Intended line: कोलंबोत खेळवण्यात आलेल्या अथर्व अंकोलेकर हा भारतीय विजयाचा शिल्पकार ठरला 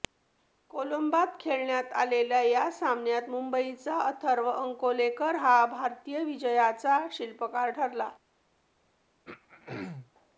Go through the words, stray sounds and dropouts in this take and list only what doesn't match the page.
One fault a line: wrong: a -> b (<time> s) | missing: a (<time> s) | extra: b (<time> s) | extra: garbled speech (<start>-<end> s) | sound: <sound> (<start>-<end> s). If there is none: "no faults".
extra: या सामन्यात मुंबईचा (2.4 s)
sound: throat clearing (9.3-10.1 s)